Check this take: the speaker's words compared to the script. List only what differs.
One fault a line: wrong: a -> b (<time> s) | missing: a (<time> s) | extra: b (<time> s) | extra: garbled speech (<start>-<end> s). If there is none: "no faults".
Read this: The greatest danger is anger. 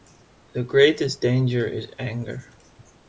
no faults